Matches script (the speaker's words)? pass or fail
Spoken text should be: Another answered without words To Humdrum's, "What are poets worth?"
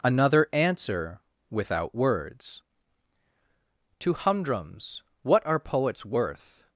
fail